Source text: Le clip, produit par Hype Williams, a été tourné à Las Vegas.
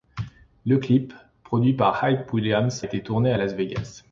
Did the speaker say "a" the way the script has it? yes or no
no